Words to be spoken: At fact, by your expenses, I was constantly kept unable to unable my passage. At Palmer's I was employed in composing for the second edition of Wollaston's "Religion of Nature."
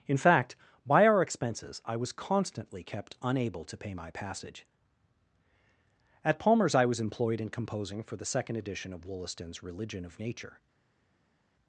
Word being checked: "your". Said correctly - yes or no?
no